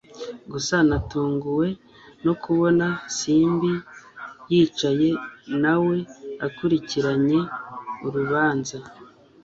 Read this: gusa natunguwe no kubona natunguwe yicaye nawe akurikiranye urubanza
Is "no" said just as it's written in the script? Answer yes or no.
yes